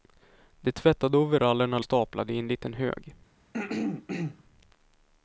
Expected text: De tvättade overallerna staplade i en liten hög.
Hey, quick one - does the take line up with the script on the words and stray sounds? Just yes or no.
no